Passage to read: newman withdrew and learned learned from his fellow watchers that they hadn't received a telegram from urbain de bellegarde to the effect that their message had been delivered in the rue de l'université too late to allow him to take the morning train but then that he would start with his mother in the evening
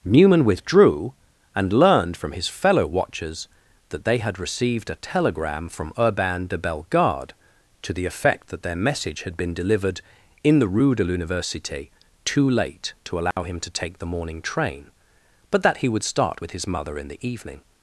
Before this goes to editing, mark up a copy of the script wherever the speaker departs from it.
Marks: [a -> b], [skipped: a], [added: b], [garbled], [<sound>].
newman withdrew and learned [skipped: learned] from his fellow watchers that they [hadn't -> had] received a telegram from urbain de bellegarde to the effect that their message had been delivered in the rue de l'université too late to allow [dropout] him to take the morning train but [skipped: then] that he would start with his mother in the evening